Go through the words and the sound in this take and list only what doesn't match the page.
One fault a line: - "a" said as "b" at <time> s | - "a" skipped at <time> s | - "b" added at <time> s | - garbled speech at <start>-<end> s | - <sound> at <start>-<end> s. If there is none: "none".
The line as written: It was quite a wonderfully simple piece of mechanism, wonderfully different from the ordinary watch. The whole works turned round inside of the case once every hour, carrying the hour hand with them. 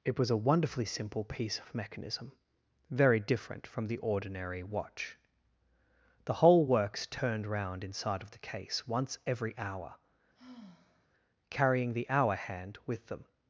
- "quite" skipped at 0.3 s
- "wonderfully" said as "very" at 2.9 s
- sigh at 10.3-11.1 s